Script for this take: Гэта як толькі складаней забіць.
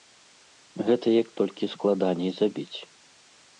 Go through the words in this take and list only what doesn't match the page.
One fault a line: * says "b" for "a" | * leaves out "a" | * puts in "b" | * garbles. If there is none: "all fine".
all fine